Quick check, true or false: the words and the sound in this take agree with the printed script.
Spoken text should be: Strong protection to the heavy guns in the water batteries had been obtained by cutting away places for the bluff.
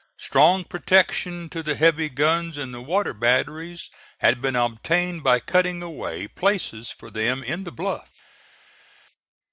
false